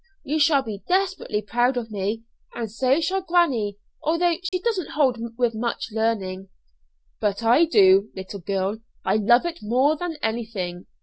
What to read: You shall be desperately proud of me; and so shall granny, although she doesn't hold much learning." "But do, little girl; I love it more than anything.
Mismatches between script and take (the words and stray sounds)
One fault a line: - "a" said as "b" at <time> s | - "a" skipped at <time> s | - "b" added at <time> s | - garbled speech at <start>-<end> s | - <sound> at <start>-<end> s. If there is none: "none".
- dropout at 4.5-4.5 s
- "with" added at 5.4 s
- "I" added at 7.4 s